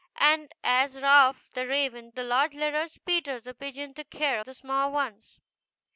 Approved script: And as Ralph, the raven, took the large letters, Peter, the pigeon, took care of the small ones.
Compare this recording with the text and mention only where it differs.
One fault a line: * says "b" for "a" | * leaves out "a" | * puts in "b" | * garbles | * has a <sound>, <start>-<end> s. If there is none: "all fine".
* leaves out "took"
* leaves out "of"